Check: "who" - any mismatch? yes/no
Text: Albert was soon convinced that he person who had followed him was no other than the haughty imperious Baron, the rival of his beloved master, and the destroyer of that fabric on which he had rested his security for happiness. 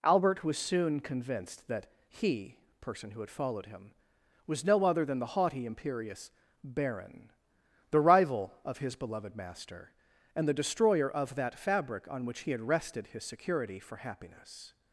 no